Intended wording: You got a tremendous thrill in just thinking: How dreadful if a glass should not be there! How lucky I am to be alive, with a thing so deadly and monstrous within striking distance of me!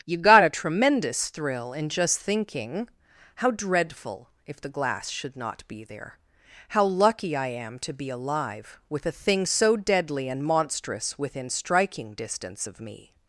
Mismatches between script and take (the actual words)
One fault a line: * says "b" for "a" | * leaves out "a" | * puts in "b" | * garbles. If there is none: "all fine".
* says "the" for "a"